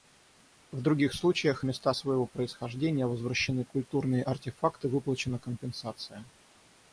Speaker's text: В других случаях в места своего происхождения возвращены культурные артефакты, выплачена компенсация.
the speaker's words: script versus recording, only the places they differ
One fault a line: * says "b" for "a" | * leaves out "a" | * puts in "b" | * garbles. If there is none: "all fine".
all fine